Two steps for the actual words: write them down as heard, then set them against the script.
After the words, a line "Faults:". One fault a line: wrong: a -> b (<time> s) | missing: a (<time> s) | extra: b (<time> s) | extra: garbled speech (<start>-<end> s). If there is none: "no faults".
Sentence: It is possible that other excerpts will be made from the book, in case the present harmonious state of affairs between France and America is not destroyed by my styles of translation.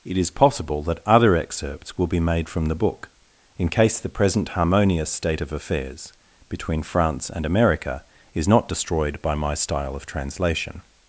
It is possible that other excerpts will be made from the book, in case the present harmonious state of affairs between France and America is not destroyed by my style of translation.
Faults:
wrong: styles -> style (9.5 s)